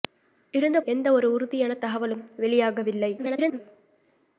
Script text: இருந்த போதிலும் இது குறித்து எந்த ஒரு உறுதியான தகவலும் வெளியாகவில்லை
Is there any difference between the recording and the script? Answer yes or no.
yes